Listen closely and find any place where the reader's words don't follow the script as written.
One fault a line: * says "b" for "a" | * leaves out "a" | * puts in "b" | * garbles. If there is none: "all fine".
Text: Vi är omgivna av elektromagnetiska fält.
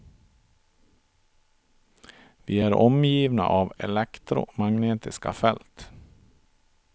all fine